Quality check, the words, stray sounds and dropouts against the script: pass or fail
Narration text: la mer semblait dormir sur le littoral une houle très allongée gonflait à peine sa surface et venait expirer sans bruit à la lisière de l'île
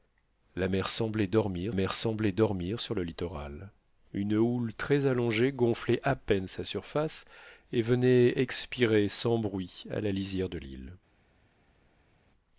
fail